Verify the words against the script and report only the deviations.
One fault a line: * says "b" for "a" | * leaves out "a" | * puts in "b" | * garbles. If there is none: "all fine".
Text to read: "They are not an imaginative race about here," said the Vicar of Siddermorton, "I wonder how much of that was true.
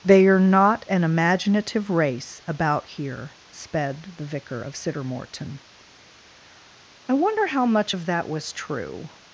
* says "sped" for "said"